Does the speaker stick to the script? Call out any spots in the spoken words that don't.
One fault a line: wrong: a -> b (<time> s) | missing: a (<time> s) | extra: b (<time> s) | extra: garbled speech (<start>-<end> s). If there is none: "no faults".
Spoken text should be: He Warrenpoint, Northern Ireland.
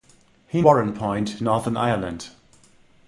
no faults